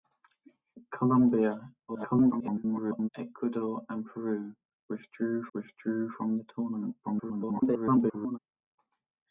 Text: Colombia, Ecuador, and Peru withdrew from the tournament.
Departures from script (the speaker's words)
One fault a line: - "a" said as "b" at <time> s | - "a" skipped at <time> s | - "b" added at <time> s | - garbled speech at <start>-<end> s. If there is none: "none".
- garbled speech at 1.9-3.1 s
- "withdrew" added at 5.5 s
- garbled speech at 7.0-8.4 s